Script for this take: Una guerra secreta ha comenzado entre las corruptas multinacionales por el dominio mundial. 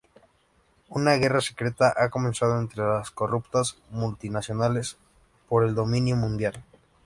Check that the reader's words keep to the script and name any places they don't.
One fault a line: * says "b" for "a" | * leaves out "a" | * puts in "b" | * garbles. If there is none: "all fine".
all fine